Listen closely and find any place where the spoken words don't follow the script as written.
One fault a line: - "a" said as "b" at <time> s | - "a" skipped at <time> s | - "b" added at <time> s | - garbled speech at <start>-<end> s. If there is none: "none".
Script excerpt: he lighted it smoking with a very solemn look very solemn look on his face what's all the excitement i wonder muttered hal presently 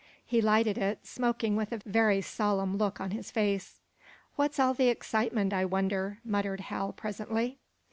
- "very solemn look" skipped at 3.0 s